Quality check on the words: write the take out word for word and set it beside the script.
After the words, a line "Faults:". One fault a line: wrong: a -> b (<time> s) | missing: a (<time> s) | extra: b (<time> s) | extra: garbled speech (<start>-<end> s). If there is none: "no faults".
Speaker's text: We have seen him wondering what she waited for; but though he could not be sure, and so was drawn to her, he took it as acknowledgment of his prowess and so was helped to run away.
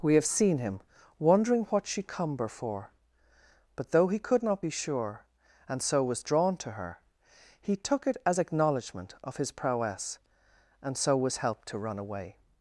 We have seen him wondering what she cumber for; but though he could not be sure, and so was drawn to her, he took it as acknowledgment of his prowess and so was helped to run away.
Faults:
wrong: waited -> cumber (2.0 s)